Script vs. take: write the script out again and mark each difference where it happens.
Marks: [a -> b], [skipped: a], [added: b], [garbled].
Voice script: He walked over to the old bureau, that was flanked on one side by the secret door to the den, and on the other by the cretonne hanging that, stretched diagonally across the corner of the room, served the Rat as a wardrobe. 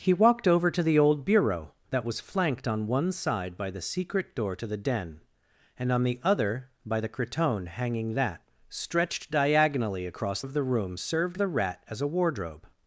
He walked over to the old bureau, that was flanked on one side by the secret door to the den, and on the other by the cretonne hanging that, stretched diagonally across [skipped: the corner] of the room, served the Rat as a wardrobe.